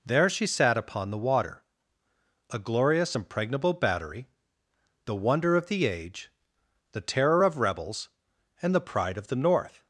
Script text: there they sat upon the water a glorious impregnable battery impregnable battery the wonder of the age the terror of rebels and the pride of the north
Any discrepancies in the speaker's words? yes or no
yes